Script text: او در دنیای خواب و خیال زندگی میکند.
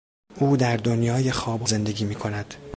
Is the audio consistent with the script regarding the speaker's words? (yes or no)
no